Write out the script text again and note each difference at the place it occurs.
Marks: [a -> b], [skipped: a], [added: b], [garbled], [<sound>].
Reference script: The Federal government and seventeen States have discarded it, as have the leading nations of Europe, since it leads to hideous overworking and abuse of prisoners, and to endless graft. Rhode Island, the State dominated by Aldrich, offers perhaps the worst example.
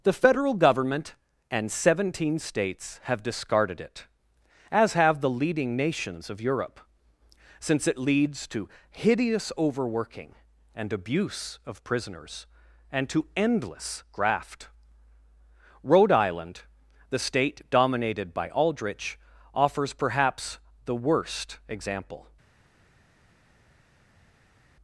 The Federal government and seventeen States have discarded it, as have the leading nations of Europe, since it leads to hideous overworking and abuse of prisoners, and to endless graft. Rhode Island, the State dominated by Aldrich, offers perhaps the worst example.